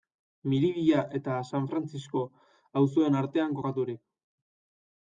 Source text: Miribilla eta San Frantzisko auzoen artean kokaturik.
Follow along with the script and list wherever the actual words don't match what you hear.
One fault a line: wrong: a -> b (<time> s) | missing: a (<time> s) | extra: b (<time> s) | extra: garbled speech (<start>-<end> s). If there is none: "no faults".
no faults